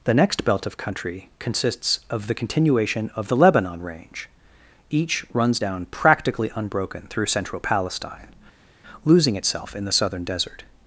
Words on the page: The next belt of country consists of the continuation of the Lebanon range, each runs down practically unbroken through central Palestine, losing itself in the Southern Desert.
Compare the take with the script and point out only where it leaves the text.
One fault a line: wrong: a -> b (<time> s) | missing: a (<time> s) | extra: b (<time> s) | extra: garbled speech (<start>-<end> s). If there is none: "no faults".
no faults